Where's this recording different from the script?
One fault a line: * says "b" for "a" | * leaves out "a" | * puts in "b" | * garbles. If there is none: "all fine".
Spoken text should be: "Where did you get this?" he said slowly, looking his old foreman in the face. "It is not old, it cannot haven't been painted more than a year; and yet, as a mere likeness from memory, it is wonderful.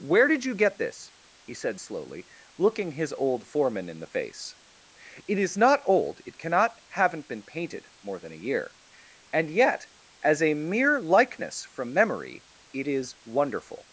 all fine